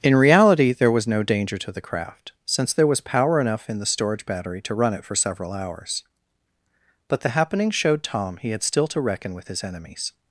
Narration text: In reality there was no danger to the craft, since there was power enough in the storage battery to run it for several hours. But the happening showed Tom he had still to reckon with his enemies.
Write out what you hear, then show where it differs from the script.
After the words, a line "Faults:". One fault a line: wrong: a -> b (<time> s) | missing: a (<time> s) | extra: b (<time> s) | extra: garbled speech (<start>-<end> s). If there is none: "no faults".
In reality there was no danger to the craft, since there was power enough in the storage battery to run it for several hours. But the happening showed Tom he had still to reckon with his enemies.
Faults:
no faults